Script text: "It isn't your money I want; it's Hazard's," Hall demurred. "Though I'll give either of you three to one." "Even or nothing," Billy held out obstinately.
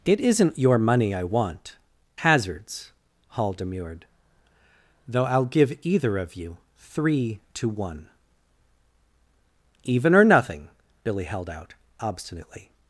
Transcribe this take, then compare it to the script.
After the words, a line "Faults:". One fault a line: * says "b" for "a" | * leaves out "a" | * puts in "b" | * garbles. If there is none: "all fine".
"It isn't your money I want; Hazard's," Hall demurred. "Though I'll give either of you three to one." "Even or nothing," Billy held out obstinately.
Faults:
* leaves out "it's"